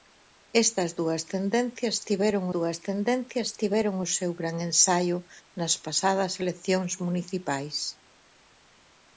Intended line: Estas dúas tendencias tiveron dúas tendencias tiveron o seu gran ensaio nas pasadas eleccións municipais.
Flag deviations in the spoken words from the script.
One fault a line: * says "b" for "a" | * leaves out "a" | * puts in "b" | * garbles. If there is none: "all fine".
all fine